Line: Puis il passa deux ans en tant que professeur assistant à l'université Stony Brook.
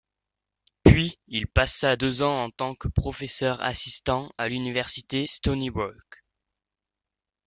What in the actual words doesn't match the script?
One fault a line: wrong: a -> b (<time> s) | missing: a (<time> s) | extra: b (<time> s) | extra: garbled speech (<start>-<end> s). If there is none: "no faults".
no faults